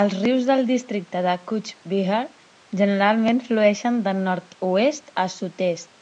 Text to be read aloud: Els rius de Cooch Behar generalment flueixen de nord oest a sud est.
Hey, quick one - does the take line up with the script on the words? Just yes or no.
no